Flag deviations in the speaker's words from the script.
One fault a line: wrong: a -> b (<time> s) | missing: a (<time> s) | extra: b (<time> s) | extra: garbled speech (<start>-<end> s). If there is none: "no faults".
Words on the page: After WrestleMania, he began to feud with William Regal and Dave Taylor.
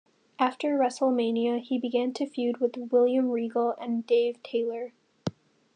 no faults